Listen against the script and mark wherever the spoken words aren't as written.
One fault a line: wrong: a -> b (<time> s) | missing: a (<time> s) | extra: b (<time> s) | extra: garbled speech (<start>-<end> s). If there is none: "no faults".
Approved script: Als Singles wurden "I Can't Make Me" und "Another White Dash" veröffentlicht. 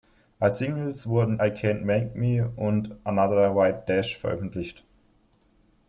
no faults